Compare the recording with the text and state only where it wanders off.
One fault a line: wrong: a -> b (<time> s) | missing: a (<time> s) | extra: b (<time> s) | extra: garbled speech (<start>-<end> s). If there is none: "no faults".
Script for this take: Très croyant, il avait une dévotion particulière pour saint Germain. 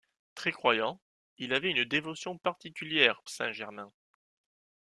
missing: pour (3.2 s)